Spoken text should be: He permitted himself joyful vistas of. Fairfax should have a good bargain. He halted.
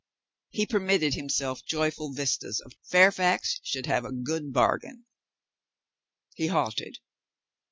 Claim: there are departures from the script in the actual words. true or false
false